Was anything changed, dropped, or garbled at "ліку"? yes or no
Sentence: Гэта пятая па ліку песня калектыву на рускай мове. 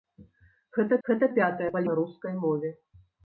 yes